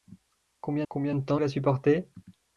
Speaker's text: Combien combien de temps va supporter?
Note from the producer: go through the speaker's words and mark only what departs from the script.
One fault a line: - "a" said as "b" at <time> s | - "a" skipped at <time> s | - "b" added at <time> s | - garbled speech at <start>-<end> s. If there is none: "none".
none